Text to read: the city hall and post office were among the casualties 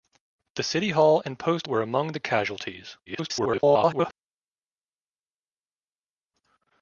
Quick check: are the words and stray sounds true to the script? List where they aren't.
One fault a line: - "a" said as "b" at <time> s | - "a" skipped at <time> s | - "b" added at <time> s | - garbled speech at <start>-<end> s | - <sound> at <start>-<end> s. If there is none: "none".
- "office" skipped at 1.7 s
- garbled speech at 3.1-4.1 s